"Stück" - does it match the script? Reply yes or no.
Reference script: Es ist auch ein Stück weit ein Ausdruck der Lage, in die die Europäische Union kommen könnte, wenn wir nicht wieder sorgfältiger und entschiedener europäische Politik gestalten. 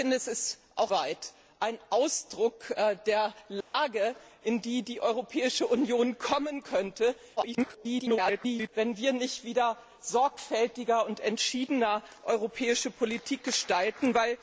no